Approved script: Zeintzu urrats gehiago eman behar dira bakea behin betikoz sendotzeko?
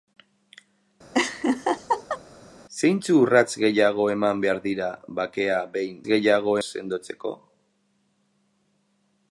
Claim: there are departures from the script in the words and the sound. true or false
true